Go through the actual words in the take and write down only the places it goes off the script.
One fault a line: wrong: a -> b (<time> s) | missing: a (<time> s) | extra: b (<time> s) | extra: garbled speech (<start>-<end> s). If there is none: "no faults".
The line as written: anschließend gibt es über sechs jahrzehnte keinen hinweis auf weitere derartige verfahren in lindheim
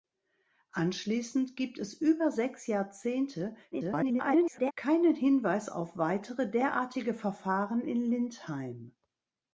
extra: garbled speech (3.7-4.7 s)